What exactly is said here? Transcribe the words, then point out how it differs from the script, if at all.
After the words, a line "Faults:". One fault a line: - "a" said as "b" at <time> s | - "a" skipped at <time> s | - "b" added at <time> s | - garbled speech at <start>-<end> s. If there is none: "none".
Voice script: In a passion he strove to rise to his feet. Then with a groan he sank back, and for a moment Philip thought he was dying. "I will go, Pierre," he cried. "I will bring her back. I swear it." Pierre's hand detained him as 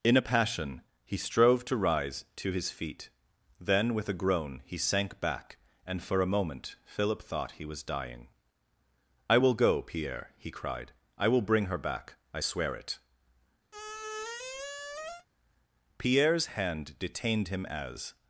In a passion he strove to rise to his feet. Then with a groan he sank back, and for a moment Philip thought he was dying. "I will go, Pierre," he cried. "I will bring her back. I swear it." Pierre's hand detained him as
Faults:
none